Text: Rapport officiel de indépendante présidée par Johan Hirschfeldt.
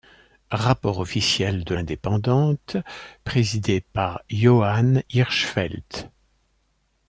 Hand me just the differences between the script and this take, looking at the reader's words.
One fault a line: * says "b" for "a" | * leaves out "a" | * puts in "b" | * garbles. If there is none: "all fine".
all fine